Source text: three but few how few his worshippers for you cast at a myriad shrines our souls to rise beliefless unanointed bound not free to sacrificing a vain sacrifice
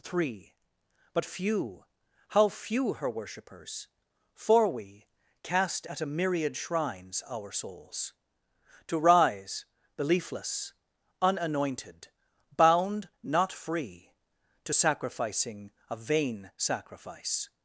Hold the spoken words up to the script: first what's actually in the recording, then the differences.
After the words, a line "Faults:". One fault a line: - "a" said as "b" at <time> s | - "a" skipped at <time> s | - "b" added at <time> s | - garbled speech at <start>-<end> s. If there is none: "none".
three but few how few her worshippers for we cast at a myriad shrines our souls to rise beliefless unanointed bound not free to sacrificing a vain sacrifice
Faults:
- "his" said as "her" at 2.9 s
- "you" said as "we" at 4.7 s